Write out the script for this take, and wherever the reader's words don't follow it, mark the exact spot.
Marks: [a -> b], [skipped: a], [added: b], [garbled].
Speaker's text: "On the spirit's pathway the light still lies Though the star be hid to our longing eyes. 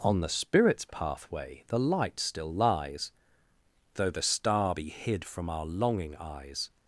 "On the spirit's pathway the light still lies Though the star be hid [to -> from] our longing eyes.